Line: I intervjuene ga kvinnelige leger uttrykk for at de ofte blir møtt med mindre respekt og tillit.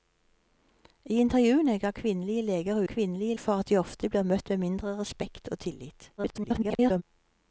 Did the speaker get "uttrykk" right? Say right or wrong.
wrong